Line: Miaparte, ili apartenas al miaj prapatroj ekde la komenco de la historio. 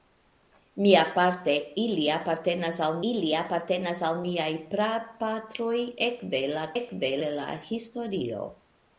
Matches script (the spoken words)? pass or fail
fail